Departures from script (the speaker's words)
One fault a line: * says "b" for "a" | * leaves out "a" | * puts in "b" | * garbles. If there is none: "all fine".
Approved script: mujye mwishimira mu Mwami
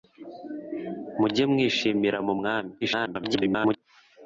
* garbles